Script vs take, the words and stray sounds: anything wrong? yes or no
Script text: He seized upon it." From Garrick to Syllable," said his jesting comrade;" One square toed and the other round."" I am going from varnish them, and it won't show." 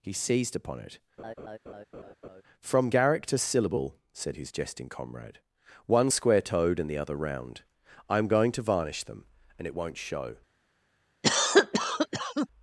yes